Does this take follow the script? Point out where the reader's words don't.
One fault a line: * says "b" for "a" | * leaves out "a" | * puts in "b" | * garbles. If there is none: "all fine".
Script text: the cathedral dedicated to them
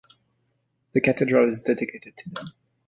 * puts in "is"